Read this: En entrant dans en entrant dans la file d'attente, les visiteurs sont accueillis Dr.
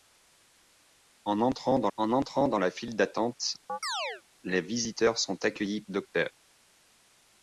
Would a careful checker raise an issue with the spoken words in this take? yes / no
no